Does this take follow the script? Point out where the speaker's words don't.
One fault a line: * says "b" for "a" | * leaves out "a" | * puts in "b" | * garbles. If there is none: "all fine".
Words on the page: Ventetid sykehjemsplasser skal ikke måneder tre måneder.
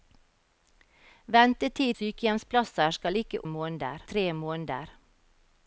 all fine